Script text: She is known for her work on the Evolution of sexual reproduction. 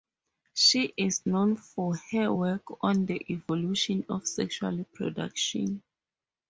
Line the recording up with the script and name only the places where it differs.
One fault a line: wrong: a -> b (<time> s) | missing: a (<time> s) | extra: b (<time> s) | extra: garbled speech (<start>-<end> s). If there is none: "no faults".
no faults